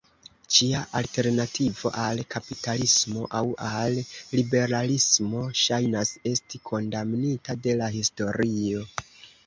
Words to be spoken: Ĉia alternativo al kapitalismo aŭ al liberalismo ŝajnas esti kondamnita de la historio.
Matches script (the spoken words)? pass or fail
pass